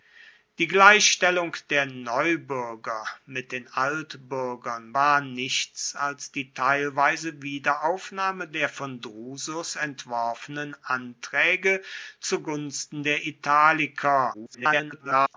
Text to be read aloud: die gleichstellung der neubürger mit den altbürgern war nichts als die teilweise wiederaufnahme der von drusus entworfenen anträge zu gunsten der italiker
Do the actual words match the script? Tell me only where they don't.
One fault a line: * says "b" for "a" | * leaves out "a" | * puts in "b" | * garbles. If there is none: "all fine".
* garbles